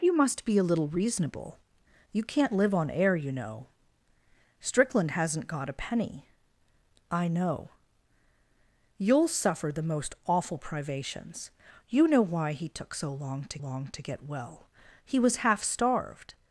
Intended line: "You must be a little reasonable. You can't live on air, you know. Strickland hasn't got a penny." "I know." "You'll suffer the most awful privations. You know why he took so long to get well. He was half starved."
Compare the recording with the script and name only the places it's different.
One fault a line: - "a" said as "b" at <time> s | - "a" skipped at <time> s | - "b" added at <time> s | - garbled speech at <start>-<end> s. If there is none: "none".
- "long to" added at 13.6 s